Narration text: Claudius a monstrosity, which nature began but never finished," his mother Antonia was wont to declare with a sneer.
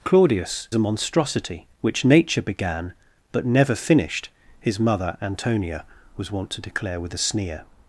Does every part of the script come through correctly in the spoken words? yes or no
yes